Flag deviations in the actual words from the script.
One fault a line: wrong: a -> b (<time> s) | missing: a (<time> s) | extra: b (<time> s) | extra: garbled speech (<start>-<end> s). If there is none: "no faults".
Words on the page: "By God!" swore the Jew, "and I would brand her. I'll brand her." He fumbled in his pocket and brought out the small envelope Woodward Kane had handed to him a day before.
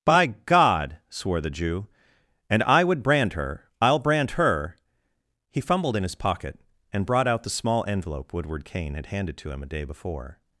no faults